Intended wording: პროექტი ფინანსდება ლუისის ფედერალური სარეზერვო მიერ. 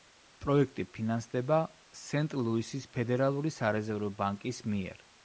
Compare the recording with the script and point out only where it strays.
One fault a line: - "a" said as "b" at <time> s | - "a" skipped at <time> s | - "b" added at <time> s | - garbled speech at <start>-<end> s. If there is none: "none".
- "სენტ" added at 2.0 s
- "ბანკის" added at 4.2 s